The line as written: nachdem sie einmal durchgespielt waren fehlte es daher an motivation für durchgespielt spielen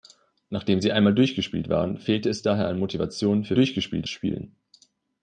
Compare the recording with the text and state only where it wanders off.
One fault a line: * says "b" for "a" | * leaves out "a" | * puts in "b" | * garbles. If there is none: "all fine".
all fine